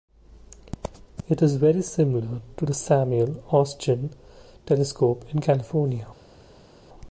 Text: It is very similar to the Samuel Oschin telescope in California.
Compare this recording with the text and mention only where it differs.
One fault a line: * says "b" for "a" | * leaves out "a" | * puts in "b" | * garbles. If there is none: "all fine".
all fine